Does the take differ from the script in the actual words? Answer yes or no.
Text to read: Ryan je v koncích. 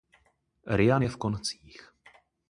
no